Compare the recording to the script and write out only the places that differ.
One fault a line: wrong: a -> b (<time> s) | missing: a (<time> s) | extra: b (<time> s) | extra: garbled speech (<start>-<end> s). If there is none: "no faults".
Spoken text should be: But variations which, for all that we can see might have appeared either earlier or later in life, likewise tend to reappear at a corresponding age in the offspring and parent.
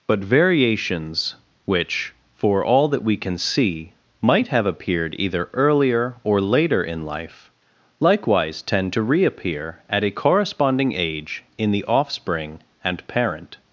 no faults